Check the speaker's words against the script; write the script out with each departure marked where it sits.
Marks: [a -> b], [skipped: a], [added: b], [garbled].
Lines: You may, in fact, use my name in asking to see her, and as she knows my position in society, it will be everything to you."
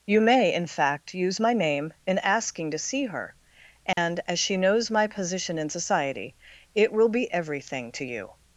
You may, in fact, use my name in asking to see her, and as she knows my position in society, it will be everything to you."